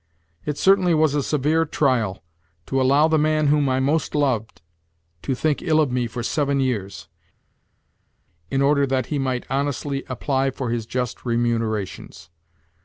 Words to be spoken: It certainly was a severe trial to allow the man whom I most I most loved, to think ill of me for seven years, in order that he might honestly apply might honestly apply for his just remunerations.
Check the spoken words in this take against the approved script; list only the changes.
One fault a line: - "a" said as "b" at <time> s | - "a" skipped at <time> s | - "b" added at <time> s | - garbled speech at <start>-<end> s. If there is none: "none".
- "I most" skipped at 4.2 s
- "might honestly apply" skipped at 10.5 s